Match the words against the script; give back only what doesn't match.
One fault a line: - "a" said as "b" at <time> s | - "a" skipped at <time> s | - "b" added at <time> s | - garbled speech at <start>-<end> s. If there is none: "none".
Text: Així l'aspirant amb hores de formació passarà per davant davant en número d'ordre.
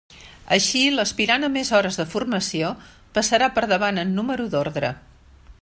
- "més" added at 1.6 s
- "davant" skipped at 4.0 s